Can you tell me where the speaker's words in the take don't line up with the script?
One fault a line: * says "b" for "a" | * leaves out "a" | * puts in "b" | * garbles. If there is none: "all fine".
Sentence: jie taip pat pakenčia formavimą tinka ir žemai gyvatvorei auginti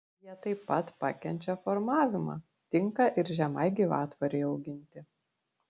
all fine